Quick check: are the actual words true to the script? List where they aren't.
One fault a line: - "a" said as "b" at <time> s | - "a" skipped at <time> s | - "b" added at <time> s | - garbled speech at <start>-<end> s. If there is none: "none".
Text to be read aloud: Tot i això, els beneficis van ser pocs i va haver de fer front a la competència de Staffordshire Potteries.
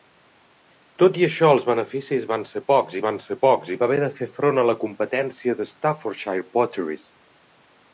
- "van ser pocs" added at 3.0 s